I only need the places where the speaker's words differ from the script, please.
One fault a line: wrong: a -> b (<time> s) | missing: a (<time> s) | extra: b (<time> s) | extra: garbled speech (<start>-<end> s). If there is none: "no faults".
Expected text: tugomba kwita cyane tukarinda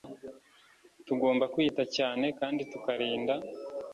extra: kandi (2.4 s)